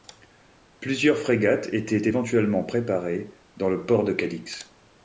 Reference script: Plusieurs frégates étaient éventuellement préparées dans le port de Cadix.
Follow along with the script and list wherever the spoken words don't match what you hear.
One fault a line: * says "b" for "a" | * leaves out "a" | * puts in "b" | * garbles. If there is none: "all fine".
all fine